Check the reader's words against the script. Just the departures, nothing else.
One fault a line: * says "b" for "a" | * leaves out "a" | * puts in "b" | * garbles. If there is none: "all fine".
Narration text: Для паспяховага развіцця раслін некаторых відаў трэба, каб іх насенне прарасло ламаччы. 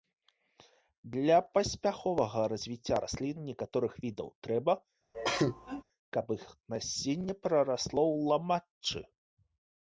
* puts in "ў"